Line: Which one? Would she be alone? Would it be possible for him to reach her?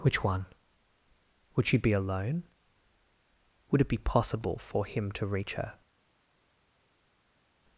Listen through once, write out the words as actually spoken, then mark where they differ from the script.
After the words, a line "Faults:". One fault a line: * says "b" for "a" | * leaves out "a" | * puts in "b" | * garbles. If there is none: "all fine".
Which one? Would she be alone? Would it be possible for him to reach her?
Faults:
all fine